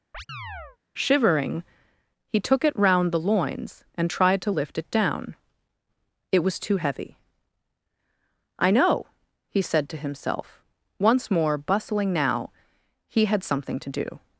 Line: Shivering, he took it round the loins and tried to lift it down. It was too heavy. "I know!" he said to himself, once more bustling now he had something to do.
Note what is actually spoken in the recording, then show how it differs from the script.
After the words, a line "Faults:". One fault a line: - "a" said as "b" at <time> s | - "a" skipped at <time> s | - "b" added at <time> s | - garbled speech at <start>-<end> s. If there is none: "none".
Shivering, he took it round the loins and tried to lift it down. It was too heavy. "I know!" he said to himself, once more bustling now he had something to do.
Faults:
none